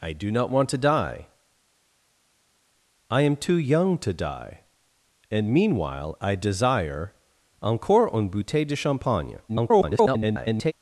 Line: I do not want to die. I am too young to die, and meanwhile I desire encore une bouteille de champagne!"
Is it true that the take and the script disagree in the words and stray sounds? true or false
true